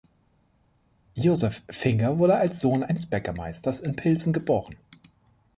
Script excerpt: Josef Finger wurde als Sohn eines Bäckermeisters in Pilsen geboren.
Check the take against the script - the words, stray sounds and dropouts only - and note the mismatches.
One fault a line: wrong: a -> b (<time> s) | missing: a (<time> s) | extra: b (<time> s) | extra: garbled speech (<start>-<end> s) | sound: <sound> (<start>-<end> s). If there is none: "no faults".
no faults